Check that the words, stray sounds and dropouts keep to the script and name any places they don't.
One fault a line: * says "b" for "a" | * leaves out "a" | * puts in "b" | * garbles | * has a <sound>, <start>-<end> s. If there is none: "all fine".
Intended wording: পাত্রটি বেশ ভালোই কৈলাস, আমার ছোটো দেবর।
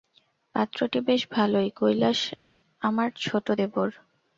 all fine